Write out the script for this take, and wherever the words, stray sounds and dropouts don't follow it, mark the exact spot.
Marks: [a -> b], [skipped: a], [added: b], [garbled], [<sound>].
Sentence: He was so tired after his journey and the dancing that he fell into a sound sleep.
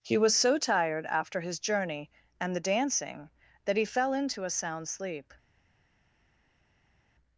He was so tired after his journey and the dancing that he fell into a sound sleep.